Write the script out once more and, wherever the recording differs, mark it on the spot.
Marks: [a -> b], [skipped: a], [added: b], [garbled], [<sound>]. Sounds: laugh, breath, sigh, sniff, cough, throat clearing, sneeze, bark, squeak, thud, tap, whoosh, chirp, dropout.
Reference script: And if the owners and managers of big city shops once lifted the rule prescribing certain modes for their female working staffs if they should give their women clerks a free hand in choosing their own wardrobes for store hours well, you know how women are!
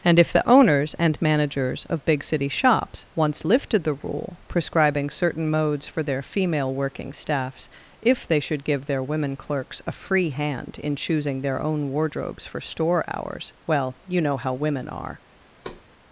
And if the owners and managers of big city shops once lifted the rule prescribing certain modes for their female working staffs if they should give their women clerks a free hand in choosing their own wardrobes for store hours well, you know how women are! [thud]